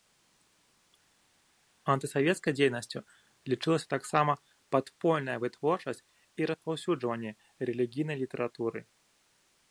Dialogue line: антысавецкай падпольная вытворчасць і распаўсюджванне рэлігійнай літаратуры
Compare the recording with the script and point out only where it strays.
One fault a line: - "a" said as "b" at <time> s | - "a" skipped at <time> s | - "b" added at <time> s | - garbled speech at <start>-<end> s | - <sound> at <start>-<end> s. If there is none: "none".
- "дзейнасцю лічылася таксама" added at 2.6 s